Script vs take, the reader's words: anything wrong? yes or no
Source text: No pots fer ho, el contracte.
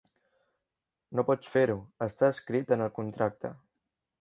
yes